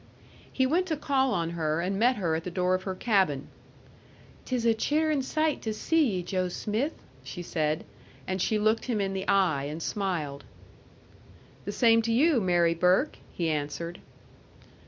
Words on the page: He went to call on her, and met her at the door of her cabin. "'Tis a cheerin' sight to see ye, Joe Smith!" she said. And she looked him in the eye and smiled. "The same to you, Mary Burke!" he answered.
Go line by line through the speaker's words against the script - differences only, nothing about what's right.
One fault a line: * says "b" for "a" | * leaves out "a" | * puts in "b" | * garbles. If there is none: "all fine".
all fine